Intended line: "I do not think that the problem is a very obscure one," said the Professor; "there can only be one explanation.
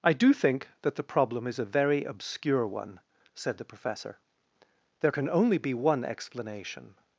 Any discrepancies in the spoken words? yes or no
yes